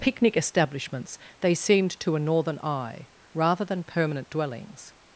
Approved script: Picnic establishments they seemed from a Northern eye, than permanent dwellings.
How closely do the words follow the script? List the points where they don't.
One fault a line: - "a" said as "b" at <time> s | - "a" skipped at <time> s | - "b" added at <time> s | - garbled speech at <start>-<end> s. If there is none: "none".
- "from" said as "to" at 2.0 s
- "rather" added at 3.3 s